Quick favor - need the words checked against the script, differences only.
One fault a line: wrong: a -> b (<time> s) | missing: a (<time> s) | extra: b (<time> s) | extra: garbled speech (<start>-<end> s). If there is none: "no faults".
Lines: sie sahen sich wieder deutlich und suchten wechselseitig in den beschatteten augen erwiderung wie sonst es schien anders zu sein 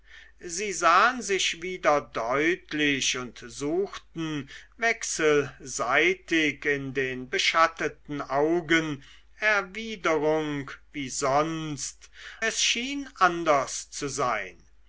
no faults